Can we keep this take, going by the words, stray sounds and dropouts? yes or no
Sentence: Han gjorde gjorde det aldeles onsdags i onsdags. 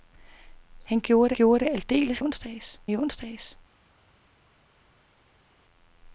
yes